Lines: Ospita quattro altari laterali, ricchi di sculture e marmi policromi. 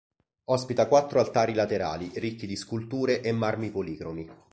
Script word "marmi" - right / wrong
right